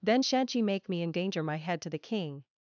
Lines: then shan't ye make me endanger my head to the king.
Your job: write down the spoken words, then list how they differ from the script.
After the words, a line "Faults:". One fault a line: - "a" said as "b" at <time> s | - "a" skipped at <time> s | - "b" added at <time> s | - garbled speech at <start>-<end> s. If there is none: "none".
then shan't ye make me endanger my head to the king.
Faults:
none